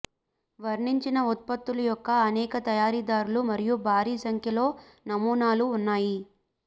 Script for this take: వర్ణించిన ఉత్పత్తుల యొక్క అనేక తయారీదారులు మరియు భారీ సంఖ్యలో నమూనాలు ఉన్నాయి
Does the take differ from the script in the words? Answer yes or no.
no